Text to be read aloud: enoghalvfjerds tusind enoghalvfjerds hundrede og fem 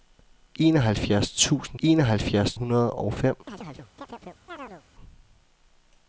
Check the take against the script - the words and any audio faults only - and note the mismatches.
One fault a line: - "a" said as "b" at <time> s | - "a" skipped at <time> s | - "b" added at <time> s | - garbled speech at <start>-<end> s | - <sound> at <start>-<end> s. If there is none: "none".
- chirp at 3.5-4.8 s